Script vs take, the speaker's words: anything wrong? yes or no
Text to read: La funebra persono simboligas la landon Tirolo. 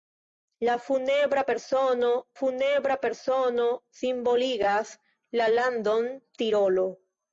yes